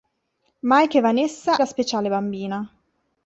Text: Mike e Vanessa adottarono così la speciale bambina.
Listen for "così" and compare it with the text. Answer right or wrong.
wrong